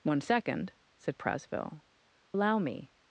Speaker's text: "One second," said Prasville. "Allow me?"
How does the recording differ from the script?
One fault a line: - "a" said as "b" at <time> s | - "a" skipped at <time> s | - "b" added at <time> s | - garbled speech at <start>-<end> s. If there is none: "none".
none